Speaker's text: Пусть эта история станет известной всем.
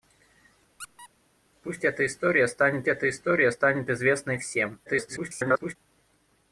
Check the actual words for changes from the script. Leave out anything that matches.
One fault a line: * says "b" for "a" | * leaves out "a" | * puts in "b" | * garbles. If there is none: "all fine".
* puts in "эта история станет"
* garbles